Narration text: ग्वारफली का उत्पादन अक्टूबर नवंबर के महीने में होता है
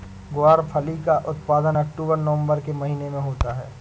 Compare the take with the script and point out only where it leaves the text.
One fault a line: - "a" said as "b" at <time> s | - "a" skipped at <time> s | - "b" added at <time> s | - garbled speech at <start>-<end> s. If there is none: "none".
none